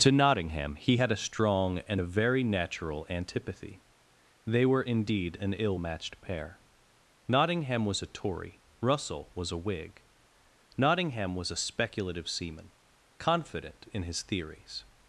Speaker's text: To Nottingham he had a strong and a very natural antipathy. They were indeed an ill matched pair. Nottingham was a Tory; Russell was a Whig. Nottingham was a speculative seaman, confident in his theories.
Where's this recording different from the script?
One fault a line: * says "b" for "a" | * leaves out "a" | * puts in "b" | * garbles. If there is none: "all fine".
all fine